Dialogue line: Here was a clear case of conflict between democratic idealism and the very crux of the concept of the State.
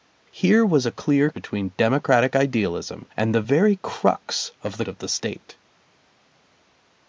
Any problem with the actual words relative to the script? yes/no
yes